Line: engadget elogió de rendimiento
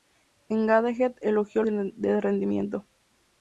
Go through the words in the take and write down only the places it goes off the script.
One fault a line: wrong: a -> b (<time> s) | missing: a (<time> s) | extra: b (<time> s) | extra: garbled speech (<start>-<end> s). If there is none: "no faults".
no faults